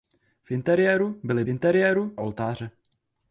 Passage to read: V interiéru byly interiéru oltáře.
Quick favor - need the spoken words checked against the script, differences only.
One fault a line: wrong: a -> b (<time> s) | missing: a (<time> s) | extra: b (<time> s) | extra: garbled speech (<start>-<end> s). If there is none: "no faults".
no faults